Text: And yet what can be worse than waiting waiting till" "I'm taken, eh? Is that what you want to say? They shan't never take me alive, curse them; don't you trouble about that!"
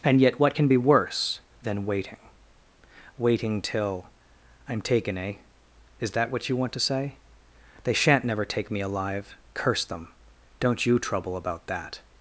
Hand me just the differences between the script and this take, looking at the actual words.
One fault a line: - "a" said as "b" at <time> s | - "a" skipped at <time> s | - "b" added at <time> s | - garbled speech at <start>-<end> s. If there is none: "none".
none